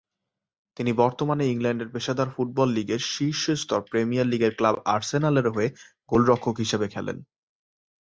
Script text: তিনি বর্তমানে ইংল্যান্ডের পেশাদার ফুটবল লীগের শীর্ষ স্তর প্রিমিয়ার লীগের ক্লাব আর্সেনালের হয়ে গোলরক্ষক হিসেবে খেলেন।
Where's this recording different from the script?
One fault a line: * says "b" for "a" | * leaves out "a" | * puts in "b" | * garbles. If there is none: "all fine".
all fine